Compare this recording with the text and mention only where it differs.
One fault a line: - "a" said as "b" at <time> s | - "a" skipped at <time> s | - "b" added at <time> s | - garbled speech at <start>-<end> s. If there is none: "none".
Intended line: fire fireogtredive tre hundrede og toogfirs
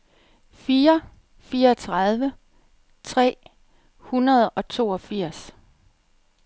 none